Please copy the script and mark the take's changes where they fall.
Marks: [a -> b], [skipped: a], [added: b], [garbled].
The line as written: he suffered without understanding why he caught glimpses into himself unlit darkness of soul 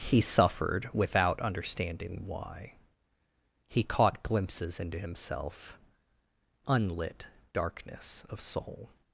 he suffered without understanding why he caught glimpses into himself unlit darkness of soul